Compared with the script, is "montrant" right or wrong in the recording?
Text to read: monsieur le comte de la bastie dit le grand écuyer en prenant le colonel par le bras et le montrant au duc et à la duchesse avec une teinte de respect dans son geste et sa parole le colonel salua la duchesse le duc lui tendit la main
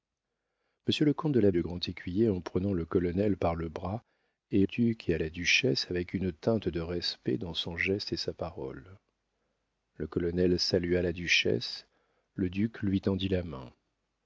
wrong